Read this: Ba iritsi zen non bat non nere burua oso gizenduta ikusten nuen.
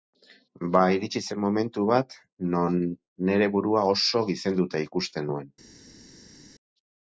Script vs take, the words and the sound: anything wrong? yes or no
yes